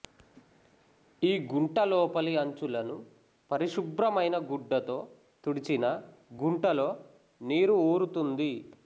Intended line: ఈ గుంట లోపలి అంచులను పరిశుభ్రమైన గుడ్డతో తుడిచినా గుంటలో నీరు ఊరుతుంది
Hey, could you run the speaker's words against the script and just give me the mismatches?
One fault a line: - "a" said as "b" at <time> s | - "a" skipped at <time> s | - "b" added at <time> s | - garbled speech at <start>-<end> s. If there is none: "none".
none